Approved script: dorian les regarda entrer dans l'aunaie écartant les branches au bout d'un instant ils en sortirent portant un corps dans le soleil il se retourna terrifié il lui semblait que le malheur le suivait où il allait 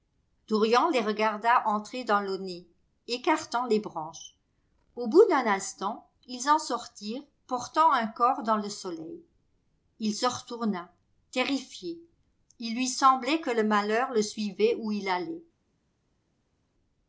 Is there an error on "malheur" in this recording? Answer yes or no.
no